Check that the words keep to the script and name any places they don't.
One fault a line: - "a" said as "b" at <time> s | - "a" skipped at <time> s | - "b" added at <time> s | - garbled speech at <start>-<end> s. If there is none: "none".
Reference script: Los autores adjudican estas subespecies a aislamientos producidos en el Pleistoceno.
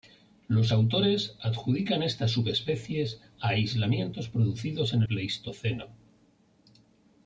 - "el" skipped at 5.0 s